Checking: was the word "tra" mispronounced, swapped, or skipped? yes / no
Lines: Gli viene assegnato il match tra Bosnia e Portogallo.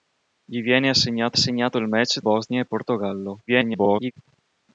yes